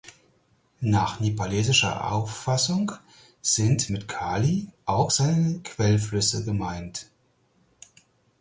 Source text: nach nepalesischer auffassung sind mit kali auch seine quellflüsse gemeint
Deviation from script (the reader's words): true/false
false